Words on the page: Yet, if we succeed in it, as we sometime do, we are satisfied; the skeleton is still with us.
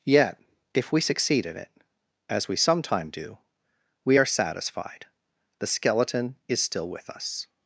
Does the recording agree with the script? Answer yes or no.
yes